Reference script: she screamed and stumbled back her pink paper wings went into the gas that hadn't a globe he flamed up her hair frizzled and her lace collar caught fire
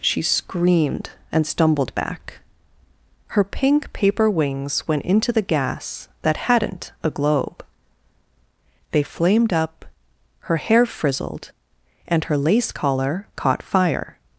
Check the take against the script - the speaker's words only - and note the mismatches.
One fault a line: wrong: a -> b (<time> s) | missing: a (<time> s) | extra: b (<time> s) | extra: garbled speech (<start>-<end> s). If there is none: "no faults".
wrong: he -> they (8.9 s)